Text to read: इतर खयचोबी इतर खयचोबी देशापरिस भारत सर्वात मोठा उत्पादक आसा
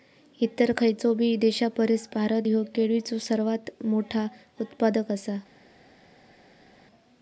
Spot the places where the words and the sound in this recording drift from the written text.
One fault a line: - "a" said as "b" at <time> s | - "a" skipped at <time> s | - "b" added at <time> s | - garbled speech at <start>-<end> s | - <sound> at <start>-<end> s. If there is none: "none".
- "इतर खयचोबी देशापरिस भारत" said as "देशापरिस भारत ह्यो केळीचो" at 1.4 s